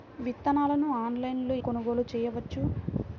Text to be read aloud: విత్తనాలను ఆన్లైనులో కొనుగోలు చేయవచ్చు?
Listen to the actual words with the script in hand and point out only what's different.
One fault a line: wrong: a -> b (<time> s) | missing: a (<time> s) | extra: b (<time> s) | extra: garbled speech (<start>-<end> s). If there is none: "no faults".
no faults